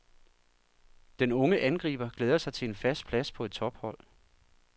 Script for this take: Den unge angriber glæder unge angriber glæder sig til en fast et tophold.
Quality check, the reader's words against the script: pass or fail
fail